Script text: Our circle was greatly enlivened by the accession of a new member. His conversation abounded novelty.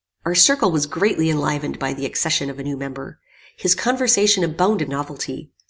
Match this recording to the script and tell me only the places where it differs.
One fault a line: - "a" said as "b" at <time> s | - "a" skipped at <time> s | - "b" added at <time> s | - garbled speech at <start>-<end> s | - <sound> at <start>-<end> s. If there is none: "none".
none